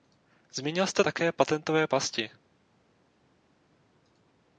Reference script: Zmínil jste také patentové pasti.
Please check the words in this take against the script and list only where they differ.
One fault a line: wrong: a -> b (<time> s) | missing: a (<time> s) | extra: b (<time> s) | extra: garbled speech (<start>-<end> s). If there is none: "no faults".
no faults